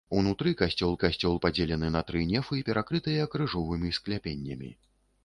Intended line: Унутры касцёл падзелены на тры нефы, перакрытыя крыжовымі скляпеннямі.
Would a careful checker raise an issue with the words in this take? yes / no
yes